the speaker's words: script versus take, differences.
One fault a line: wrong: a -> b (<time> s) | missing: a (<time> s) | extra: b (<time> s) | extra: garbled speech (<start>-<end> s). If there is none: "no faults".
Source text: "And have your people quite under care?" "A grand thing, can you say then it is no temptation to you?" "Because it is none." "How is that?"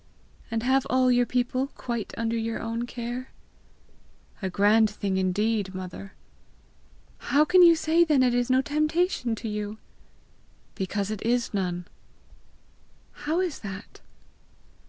extra: all (0.9 s)
extra: your own (2.4 s)
extra: indeed mother How (5.2 s)